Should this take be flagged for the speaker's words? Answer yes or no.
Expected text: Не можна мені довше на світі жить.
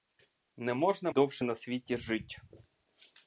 yes